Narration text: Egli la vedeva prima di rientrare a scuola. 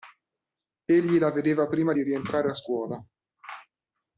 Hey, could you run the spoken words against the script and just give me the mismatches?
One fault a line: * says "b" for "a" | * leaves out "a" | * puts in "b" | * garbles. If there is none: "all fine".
all fine